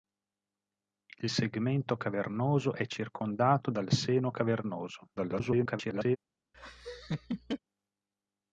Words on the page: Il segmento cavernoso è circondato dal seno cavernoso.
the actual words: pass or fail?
fail